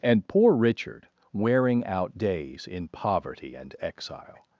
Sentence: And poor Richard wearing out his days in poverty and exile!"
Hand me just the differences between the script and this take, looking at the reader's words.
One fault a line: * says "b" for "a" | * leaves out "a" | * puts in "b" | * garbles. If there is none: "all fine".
* leaves out "his"